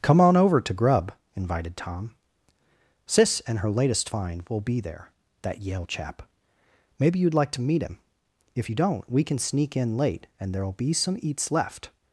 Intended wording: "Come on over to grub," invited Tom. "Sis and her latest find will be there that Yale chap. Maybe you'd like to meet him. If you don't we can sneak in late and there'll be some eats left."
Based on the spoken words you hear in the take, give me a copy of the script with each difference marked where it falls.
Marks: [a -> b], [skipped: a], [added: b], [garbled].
"Come on over to grub," invited Tom. "Sis and her latest find will be there that Yale chap. Maybe you'd like to meet him. If you don't we can sneak in late and there'll be some eats left."